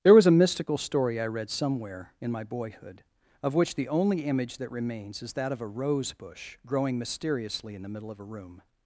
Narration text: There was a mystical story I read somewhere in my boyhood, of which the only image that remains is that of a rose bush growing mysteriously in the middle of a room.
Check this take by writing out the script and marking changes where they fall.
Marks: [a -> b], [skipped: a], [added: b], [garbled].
There was a mystical story I read somewhere in my boyhood, of which the only image that remains is that of a rose bush growing mysteriously in the middle of a room.